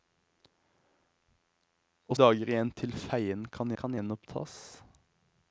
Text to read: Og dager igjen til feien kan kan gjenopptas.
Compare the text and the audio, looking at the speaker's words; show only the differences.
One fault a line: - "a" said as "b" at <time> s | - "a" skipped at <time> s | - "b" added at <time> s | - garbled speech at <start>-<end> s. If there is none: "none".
none